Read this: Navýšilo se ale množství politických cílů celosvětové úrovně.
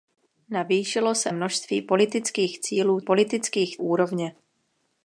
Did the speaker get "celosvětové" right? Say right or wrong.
wrong